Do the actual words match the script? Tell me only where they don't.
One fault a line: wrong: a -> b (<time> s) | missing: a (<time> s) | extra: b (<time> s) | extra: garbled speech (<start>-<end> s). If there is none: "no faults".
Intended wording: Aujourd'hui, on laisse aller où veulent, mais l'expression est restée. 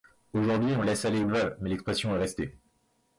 no faults